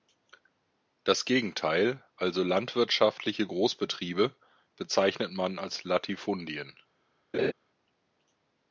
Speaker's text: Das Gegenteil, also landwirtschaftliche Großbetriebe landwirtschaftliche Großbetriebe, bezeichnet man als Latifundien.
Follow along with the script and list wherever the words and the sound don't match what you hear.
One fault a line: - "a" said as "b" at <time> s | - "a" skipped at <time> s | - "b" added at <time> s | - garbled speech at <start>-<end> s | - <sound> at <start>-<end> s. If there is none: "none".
- "landwirtschaftliche Großbetriebe" skipped at 4.3 s
- laugh at 7.3-7.5 s